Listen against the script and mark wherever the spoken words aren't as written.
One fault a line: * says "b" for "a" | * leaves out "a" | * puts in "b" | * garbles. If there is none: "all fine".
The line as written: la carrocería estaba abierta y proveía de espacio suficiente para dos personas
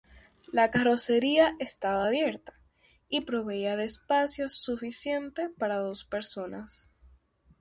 all fine